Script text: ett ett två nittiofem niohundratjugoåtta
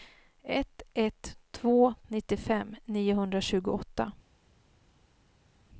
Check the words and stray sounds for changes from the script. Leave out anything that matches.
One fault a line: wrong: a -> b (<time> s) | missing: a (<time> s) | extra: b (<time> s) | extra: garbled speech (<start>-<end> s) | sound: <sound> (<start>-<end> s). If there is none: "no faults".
no faults